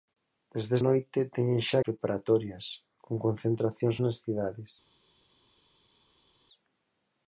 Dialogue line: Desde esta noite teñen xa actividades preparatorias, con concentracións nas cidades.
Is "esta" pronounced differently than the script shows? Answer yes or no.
yes